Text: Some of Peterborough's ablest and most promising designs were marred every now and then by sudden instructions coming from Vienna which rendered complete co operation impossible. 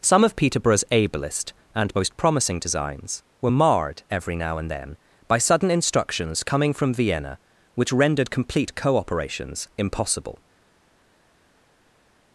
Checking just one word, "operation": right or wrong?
wrong